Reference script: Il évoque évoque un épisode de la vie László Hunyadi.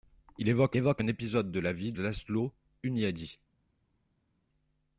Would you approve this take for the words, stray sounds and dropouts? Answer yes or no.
yes